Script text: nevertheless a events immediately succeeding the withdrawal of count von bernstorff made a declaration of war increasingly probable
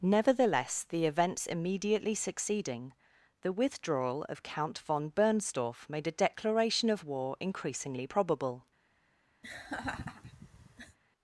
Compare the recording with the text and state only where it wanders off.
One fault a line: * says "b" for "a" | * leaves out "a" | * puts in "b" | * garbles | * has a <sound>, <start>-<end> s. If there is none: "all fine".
* says "the" for "a"
* has a laugh, 9.4-11.0 s